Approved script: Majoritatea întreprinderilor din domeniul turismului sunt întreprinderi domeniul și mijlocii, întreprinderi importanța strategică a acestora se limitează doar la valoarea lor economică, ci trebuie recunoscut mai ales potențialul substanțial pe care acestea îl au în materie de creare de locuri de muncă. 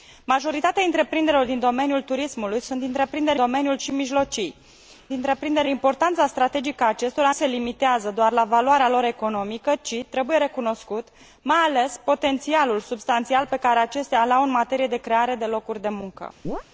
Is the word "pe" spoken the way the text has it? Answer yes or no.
yes